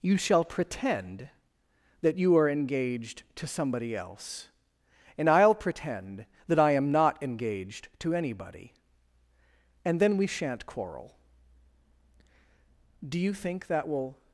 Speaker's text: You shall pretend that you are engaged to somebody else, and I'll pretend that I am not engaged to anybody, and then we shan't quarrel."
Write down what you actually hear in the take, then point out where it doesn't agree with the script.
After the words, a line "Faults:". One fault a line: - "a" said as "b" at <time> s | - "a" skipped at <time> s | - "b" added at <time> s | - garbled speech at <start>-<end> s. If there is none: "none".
You shall pretend that you are engaged to somebody else, and I'll pretend that I am not engaged to anybody, and then we shan't quarrel." "Do you think that will
Faults:
- "Do you think that will" added at 13.1 s